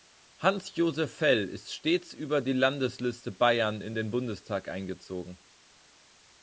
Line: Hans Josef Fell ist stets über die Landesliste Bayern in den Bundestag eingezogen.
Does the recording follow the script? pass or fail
pass